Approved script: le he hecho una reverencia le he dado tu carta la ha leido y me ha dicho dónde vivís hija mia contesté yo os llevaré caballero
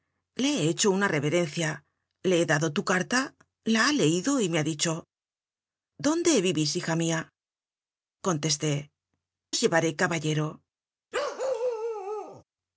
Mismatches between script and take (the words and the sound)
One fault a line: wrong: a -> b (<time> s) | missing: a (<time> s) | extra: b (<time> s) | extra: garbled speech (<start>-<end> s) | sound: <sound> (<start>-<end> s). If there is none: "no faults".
missing: yo (8.9 s)
sound: bark (11.1-12.4 s)